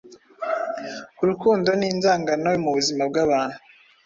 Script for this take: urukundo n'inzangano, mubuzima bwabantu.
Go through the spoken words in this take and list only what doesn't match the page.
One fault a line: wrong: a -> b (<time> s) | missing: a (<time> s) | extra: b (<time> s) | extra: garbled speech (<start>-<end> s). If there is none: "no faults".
no faults